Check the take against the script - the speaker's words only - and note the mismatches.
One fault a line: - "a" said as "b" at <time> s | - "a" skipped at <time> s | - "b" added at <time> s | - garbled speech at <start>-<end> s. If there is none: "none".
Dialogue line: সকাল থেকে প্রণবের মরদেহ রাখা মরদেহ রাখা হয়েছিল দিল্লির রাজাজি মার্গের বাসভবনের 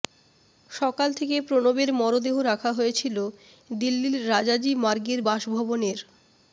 - "মরদেহ রাখা" skipped at 2.7 s